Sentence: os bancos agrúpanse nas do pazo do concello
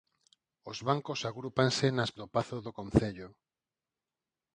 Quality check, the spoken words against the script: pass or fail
pass